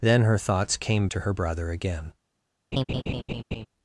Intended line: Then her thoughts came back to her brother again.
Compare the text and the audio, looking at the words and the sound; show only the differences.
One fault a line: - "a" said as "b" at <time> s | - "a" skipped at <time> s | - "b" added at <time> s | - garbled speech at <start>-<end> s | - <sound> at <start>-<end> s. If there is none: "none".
- "back" skipped at 1.1 s
- laugh at 2.7-3.7 s